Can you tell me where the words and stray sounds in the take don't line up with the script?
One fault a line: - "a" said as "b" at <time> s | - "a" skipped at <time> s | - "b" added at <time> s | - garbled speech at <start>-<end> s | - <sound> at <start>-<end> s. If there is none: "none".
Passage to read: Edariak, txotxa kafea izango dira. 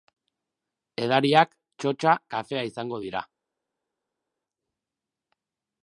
none